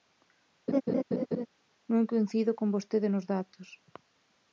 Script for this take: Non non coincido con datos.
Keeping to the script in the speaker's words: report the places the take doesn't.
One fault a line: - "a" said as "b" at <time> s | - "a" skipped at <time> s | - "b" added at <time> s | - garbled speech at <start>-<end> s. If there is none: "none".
- "non" skipped at 2.1 s
- "vostede nos" added at 2.7 s